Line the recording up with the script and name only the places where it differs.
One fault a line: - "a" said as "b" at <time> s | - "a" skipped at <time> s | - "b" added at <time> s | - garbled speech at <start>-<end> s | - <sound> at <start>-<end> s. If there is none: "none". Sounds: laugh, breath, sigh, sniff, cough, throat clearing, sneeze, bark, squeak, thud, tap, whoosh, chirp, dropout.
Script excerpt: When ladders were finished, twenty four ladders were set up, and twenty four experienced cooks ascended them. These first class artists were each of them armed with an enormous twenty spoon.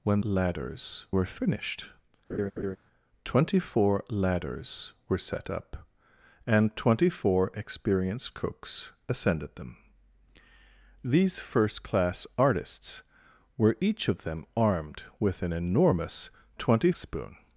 - laugh at 2.3-2.8 s